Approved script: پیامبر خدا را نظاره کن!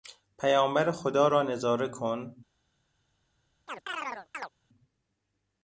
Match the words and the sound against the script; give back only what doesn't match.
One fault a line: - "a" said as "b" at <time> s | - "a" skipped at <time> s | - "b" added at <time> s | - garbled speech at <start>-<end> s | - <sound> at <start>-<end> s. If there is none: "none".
- chirp at 3.7-4.5 s